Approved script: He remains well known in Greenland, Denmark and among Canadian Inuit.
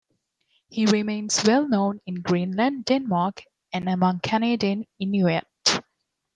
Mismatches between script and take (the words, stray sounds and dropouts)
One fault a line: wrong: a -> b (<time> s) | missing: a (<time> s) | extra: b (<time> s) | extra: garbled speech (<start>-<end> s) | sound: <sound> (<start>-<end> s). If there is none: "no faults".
no faults